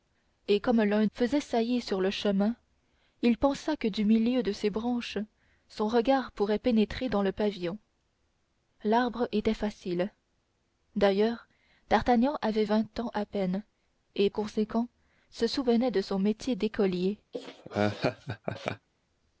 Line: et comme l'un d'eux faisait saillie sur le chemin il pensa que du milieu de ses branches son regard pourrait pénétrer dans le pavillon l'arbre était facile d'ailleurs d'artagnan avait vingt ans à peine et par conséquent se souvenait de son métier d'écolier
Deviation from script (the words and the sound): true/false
true